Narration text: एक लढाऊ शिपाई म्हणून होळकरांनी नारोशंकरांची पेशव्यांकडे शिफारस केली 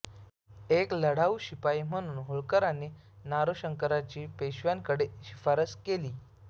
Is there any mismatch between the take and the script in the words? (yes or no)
no